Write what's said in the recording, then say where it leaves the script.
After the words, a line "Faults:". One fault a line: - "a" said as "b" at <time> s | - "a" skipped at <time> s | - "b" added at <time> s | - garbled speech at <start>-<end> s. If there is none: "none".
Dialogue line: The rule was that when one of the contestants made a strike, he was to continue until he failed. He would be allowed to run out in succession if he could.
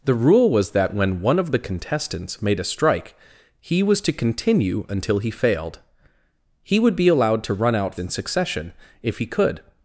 The rule was that when one of the contestants made a strike, he was to continue until he failed. He would be allowed to run out in succession if he could.
Faults:
none